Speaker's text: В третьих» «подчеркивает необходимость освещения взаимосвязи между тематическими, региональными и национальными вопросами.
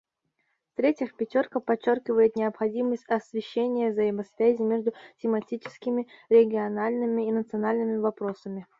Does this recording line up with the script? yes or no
no